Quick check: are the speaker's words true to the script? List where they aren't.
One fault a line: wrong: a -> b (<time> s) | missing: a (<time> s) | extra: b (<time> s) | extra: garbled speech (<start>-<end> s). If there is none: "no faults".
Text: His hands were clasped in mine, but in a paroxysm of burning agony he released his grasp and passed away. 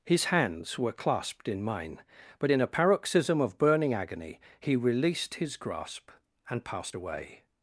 no faults